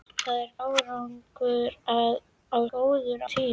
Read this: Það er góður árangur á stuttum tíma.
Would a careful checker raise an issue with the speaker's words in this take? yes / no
yes